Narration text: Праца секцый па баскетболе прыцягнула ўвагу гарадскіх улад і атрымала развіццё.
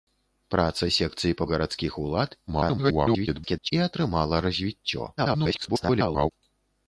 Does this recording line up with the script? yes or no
no